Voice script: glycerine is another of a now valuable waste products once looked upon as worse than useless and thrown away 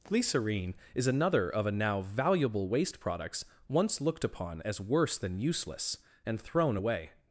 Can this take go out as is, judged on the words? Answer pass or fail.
pass